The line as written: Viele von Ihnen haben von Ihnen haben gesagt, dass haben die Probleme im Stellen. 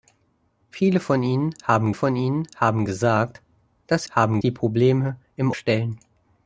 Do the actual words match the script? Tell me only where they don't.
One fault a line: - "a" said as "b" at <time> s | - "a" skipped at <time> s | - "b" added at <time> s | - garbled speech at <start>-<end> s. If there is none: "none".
none